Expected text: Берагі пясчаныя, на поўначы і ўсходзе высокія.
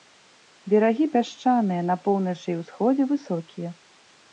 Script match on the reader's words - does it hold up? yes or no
yes